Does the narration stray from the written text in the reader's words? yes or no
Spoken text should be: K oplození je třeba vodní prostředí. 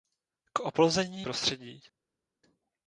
yes